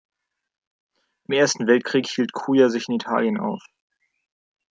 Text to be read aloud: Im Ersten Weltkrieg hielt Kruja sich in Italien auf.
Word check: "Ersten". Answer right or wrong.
right